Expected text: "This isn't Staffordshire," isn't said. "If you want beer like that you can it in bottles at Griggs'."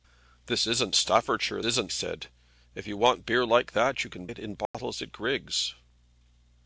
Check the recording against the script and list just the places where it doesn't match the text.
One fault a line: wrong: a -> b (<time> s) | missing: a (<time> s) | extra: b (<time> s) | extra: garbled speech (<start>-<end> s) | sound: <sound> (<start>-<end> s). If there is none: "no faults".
sound: dropout (4.7-4.7 s)